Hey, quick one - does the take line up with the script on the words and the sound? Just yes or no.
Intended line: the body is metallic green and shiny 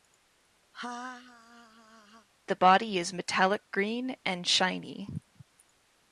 no